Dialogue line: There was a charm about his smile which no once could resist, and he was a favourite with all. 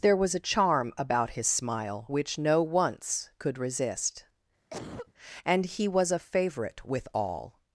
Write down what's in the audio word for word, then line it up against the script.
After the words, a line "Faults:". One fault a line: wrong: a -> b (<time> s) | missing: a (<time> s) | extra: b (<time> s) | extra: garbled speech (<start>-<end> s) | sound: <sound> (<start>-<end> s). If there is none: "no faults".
There was a charm about his smile which no once could resist, and he was a favourite with all.
Faults:
sound: cough (4.7-5.1 s)